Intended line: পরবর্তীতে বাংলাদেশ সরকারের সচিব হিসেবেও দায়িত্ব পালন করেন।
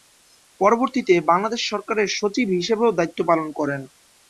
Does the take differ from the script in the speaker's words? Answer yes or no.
no